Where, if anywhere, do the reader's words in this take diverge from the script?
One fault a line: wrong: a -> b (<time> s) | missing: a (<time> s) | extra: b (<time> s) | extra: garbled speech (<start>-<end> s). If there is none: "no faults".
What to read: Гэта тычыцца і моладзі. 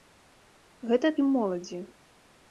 missing: тычыцца (1.1 s)